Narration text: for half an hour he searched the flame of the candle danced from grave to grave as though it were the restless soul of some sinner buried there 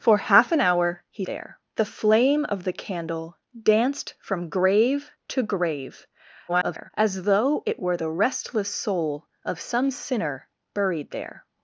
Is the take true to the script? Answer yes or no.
no